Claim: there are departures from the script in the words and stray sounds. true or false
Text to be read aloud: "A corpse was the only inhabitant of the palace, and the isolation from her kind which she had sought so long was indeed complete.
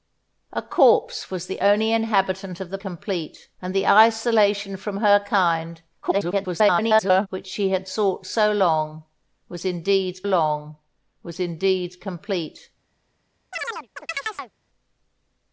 true